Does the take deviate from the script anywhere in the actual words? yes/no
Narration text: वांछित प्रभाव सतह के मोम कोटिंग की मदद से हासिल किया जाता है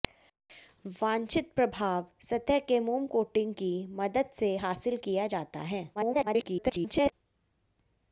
yes